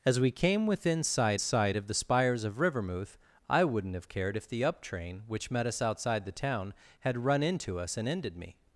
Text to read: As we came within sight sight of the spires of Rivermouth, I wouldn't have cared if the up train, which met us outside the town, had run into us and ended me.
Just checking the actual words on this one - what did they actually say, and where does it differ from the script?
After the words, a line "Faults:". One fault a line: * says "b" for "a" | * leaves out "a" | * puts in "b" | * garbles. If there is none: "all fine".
As we came within sight sight of the spires of Rivermouth, I wouldn't have cared if the up train, which met us outside the town, had run into us and ended me.
Faults:
all fine